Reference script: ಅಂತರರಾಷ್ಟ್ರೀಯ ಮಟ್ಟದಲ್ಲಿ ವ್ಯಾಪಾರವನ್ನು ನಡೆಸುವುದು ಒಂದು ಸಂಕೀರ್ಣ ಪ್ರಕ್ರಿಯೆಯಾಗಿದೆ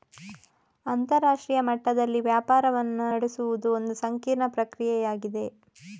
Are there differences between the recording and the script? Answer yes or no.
no